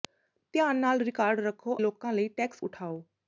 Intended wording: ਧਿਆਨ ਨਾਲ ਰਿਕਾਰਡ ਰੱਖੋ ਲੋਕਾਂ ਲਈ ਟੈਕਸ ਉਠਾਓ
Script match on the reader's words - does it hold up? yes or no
yes